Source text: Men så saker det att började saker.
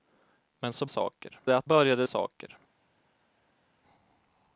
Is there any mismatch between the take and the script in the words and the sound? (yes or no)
no